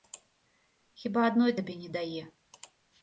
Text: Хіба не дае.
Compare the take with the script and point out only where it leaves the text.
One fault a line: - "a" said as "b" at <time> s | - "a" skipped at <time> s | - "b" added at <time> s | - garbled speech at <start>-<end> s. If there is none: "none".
- "адной табе" added at 1.3 s